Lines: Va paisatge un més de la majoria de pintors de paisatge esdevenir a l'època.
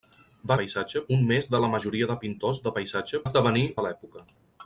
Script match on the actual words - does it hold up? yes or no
yes